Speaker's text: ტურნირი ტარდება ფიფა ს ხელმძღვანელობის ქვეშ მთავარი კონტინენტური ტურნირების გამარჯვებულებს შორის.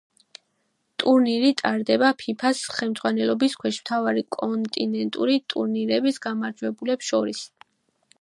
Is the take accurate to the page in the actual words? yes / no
yes